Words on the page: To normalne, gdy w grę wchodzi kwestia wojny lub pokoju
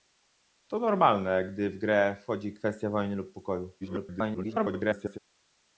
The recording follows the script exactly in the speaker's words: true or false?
false